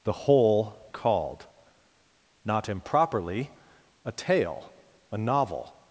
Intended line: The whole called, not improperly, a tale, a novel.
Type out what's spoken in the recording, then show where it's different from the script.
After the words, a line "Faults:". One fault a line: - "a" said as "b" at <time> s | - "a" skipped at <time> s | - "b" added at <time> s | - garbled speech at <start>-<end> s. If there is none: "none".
The whole called, not improperly, a tale, a novel.
Faults:
none